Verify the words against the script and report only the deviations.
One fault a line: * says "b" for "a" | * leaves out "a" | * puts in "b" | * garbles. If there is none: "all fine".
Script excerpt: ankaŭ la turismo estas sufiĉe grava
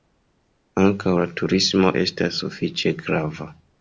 all fine